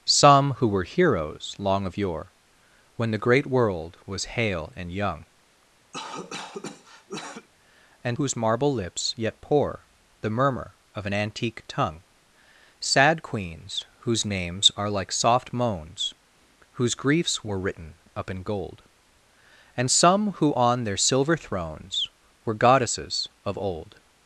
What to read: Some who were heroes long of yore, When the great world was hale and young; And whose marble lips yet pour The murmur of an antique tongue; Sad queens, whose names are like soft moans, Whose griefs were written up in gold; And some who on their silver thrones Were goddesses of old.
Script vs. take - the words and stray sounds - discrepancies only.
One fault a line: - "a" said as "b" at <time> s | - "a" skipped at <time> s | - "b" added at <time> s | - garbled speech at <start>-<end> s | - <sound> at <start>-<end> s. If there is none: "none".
- cough at 5.9-7.5 s